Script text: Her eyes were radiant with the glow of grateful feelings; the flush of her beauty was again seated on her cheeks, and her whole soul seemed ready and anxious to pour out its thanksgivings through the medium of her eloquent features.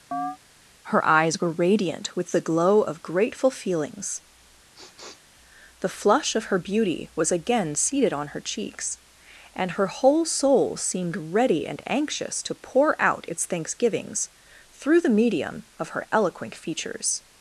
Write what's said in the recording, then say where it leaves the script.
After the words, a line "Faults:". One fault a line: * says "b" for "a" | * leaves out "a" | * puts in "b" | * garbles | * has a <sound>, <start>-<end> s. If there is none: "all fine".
Her eyes were radiant with the glow of grateful feelings; the flush of her beauty was again seated on her cheeks, and her whole soul seemed ready and anxious to pour out its thanksgivings through the medium of her eloquent features.
Faults:
* has a chirp, 0.1-0.4 s
* has a sniff, 4.7-5.3 s